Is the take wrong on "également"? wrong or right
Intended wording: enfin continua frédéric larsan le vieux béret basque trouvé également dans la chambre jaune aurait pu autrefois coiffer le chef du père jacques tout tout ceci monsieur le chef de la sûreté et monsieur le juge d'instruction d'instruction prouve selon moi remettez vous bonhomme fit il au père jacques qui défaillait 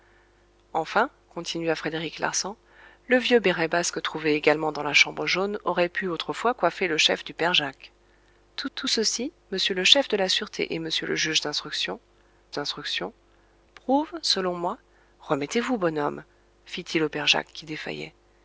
right